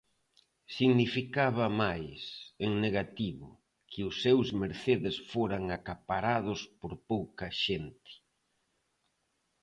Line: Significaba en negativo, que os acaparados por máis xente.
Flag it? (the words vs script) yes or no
yes